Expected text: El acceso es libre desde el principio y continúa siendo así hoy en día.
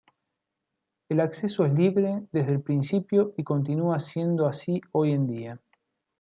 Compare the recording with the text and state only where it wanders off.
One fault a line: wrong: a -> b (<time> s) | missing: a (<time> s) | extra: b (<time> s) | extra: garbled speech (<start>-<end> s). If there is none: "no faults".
no faults